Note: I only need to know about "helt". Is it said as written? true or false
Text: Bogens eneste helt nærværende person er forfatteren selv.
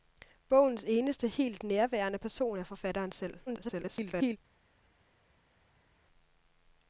true